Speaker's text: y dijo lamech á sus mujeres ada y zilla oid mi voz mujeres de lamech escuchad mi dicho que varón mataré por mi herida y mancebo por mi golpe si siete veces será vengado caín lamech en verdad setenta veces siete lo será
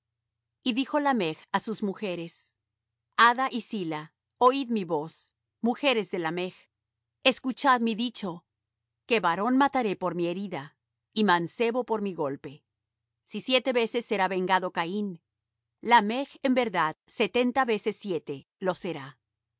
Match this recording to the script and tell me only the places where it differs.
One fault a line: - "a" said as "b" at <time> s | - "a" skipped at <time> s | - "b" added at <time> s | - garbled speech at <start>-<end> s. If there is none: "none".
none